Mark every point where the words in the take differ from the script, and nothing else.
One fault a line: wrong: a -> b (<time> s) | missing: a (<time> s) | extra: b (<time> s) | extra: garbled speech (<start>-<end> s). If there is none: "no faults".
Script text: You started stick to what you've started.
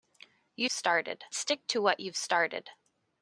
no faults